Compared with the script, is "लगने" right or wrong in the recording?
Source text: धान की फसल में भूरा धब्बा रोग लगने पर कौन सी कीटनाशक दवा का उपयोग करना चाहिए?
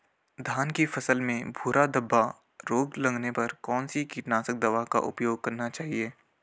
right